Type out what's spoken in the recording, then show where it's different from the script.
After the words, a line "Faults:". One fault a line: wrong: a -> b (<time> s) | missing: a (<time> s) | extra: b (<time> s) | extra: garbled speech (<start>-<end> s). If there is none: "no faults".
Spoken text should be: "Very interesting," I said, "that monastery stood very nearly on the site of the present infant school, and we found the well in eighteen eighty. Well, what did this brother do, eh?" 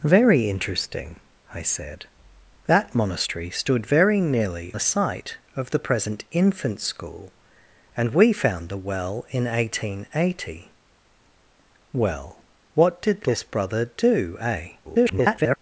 "Very interesting," I said, "that monastery stood very nearly the site of the present infant school, and we found the well in eighteen eighty. Well, what did this brother do, eh?" [garbled]
Faults:
missing: on (4.7 s)
extra: garbled speech (14.8-15.6 s)